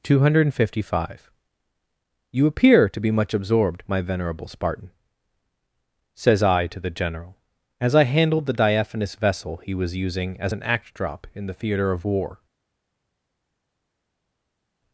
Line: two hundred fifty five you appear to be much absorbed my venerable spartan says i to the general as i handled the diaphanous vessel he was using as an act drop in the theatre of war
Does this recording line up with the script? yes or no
yes